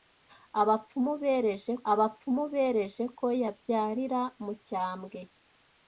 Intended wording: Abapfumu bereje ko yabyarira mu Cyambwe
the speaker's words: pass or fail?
fail